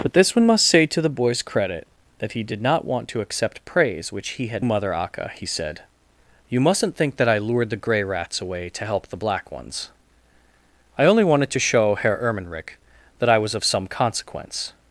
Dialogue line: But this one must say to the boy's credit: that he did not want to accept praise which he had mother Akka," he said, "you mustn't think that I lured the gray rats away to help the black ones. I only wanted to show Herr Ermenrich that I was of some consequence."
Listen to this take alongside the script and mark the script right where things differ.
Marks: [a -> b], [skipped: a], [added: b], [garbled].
But this one must say to the boy's credit: that he did not want to accept praise which he had mother Akka," he said, "you mustn't think that I lured the gray rats away to help the black ones. I only wanted to show Herr Ermenrich that I was of some consequence."